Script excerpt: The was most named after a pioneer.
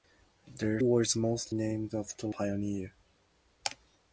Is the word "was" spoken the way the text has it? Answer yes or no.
yes